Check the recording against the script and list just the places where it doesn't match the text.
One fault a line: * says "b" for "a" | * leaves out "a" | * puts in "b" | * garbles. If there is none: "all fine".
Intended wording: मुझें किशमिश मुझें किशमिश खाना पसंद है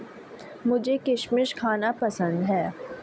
* leaves out "मुझें किशमिश"